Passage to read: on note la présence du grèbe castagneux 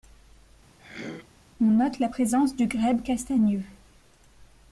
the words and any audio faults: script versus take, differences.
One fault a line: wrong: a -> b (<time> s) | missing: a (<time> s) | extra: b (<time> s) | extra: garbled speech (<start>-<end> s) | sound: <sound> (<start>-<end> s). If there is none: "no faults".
sound: throat clearing (0.8-1.3 s)